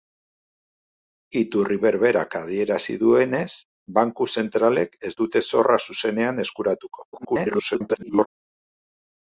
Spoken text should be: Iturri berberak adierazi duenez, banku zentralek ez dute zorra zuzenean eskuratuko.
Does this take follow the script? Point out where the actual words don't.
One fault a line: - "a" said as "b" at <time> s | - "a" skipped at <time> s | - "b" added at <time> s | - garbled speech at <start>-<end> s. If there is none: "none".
- garbled speech at 7.1-8.3 s